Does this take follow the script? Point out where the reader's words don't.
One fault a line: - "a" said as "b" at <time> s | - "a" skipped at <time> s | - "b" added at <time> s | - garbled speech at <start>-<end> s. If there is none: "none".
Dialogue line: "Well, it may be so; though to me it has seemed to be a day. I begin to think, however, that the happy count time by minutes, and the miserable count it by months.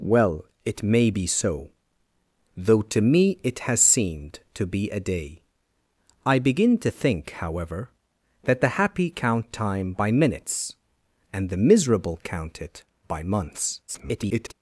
- garbled speech at 13.9-14.5 s